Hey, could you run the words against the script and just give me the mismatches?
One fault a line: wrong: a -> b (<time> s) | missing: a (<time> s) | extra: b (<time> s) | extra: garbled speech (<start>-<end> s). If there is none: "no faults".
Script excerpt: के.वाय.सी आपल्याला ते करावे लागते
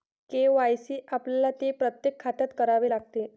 extra: प्रत्येक खात्यात (1.7 s)